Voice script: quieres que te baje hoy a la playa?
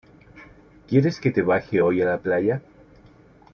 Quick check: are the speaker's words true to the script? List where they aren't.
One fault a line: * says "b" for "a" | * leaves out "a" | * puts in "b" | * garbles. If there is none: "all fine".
all fine